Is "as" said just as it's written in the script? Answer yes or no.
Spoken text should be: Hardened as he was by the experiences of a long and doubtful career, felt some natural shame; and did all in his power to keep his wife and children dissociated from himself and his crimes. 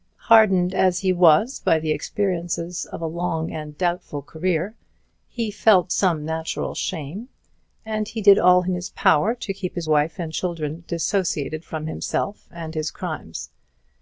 yes